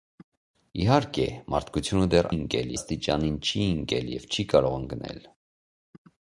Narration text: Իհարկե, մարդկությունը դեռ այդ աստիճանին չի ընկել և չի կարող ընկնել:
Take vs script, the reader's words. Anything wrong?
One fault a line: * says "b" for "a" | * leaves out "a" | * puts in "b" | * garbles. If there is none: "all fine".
* says "ընկել" for "այդ"